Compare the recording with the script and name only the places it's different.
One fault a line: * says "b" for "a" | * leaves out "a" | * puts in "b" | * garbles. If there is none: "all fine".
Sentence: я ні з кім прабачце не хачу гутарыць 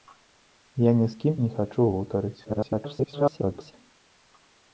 * leaves out "прабачце"
* garbles